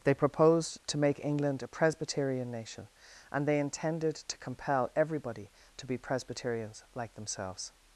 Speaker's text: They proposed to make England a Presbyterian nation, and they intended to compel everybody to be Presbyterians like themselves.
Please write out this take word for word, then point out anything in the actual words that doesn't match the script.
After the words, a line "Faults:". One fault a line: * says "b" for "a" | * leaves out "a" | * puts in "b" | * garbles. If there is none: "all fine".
They proposed to make England a Presbyterian nation, and they intended to compel everybody to be Presbyterians like themselves.
Faults:
all fine